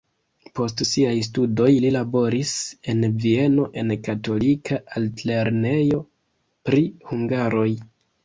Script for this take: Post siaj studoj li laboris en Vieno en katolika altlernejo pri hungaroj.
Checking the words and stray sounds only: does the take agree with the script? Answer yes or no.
yes